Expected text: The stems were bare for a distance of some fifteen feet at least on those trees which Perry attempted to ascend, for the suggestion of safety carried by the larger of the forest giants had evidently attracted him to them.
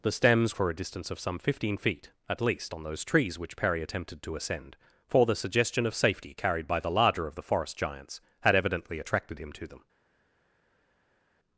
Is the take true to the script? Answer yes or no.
no